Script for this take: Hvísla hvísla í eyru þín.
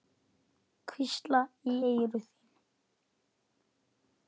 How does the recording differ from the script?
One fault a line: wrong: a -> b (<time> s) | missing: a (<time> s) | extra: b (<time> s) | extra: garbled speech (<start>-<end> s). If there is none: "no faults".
missing: hvísla (1.4 s)